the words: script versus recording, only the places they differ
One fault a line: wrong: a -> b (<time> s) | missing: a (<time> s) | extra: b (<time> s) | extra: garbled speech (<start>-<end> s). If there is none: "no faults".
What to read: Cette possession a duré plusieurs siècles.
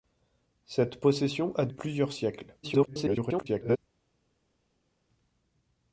missing: duré (1.7 s)
extra: garbled speech (2.6-3.8 s)